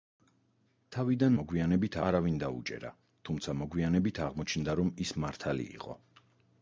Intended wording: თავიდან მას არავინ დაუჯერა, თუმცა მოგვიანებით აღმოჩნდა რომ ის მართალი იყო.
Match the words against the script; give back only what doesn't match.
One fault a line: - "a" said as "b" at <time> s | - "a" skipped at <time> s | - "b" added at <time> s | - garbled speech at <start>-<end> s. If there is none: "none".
- "მას" said as "მოგვიანებით" at 1.4 s